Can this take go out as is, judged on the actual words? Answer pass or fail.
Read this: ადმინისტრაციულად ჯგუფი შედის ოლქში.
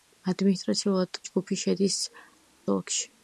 pass